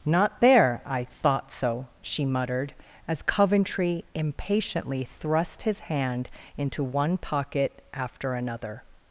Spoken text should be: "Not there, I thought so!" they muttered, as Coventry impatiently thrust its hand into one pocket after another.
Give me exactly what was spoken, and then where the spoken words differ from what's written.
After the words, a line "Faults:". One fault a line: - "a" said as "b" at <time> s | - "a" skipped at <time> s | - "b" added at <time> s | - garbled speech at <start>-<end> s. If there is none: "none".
"Not there, I thought so!" she muttered, as Coventry impatiently thrust his hand into one pocket after another.
Faults:
- "they" said as "she" at 2.0 s
- "its" said as "his" at 5.6 s